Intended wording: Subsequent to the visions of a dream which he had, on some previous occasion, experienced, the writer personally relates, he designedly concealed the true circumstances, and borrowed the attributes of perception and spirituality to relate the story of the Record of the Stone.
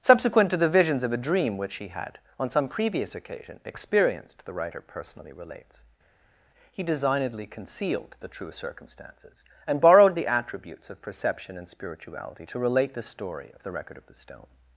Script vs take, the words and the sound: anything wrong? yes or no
no